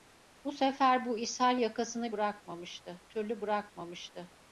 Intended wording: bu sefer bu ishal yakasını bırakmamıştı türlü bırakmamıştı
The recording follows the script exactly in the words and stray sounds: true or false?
true